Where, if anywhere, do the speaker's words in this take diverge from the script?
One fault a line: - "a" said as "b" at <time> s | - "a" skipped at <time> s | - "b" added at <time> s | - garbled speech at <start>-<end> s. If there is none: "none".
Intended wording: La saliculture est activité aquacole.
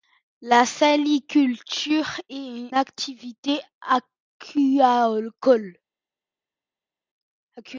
none